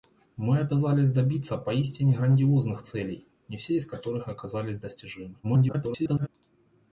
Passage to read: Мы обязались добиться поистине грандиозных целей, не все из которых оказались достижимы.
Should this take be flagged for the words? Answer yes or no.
yes